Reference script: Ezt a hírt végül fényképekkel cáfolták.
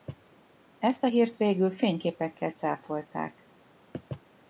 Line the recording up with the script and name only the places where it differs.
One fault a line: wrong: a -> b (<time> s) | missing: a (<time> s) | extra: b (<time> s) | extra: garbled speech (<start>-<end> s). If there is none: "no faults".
no faults